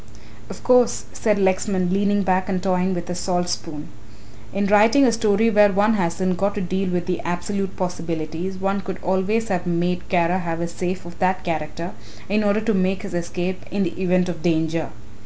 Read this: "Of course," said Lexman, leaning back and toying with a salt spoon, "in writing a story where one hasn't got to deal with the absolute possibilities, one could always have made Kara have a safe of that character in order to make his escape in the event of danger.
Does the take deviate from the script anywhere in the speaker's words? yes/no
no